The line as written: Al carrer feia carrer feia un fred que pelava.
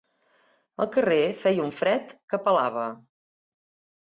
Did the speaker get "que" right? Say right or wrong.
right